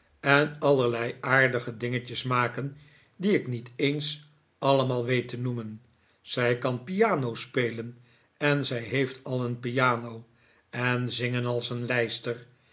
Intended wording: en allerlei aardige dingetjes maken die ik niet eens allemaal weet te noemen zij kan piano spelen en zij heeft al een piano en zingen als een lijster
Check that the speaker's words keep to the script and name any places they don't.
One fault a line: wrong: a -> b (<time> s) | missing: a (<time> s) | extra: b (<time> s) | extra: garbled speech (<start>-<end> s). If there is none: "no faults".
no faults